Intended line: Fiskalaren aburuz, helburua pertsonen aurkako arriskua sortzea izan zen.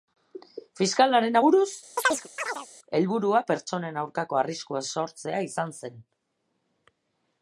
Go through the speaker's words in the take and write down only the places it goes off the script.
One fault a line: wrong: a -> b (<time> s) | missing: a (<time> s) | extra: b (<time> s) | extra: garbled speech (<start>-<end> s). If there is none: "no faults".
no faults